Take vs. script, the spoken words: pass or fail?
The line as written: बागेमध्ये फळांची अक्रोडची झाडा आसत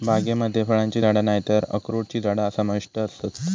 fail